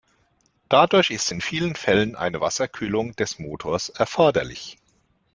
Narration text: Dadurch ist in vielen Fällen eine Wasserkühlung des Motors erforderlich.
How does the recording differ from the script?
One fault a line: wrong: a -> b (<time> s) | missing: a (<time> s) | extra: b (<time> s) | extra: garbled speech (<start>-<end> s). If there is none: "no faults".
no faults